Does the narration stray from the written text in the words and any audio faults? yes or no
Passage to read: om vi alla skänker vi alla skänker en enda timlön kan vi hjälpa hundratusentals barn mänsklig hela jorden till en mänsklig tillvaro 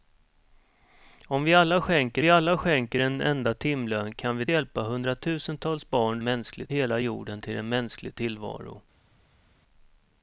no